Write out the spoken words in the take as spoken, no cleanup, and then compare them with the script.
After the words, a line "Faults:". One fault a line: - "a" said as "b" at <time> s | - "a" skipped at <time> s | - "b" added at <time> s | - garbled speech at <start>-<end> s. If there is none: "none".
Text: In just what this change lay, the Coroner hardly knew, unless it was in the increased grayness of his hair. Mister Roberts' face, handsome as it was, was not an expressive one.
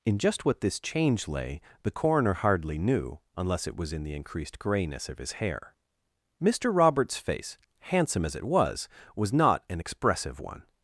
In just what this change lay, the Coroner hardly knew, unless it was in the increased grayness of his hair. Mister Roberts' face, handsome as it was, was not an expressive one.
Faults:
none